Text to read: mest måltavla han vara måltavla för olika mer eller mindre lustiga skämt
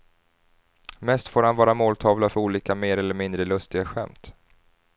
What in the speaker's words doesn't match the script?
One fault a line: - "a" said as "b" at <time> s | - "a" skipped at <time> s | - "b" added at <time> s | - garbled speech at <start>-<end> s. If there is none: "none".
- "måltavla" said as "får" at 1.3 s